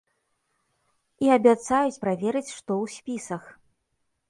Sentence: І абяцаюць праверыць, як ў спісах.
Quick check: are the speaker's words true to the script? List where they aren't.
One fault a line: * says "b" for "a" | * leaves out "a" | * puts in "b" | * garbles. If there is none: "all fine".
* says "што" for "як"